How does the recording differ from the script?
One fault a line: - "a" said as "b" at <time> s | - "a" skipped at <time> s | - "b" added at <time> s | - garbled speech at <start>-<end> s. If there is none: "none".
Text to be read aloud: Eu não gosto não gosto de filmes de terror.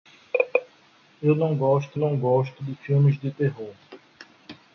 none